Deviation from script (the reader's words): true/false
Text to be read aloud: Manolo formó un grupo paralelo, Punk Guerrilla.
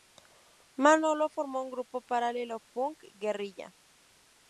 false